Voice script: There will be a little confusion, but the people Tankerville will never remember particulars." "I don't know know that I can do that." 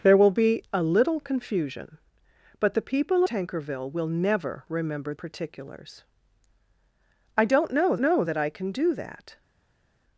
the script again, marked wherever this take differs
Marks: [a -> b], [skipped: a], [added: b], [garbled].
There will be a little confusion, but the people Tankerville will never remember particulars." "I don't know know that I can do that."